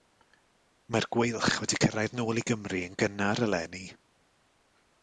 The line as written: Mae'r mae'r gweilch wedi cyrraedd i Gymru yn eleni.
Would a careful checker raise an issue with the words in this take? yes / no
yes